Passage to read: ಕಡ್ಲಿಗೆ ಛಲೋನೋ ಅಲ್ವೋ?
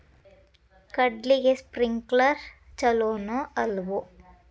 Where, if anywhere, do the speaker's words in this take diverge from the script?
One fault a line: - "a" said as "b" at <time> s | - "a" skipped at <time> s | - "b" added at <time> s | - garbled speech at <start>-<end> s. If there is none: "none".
- "ಸ್ಪ್ರಿಂಕ್ಲರ್" added at 1.6 s